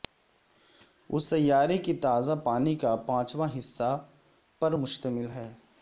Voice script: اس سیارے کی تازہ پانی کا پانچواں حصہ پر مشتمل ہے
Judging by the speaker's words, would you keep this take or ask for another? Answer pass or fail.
pass